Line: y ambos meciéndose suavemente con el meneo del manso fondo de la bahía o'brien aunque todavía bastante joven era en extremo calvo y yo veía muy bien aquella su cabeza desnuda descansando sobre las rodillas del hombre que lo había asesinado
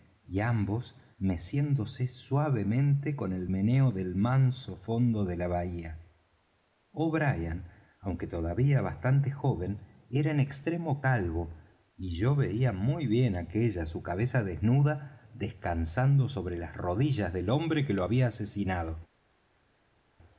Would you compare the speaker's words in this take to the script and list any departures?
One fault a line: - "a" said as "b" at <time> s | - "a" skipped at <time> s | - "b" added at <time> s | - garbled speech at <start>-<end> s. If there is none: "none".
none